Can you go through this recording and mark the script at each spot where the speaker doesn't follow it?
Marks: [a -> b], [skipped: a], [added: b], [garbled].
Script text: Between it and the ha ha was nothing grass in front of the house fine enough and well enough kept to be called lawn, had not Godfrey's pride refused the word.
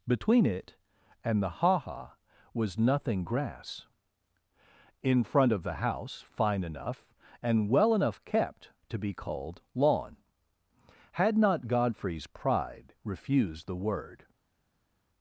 Between it and the ha ha was nothing grass in front of the house fine enough and well enough kept to be called lawn, had not Godfrey's pride refused the word.